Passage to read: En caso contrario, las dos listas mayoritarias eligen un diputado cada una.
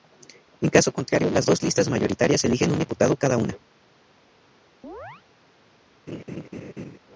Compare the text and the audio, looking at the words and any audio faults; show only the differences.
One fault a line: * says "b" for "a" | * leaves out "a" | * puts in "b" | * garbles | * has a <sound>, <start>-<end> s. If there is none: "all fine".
* has a chirp, 4.8-5.2 s
* has a laugh, 6.1-7.0 s